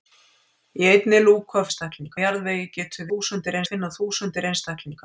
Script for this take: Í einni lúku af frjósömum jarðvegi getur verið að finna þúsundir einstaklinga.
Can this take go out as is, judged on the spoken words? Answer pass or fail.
fail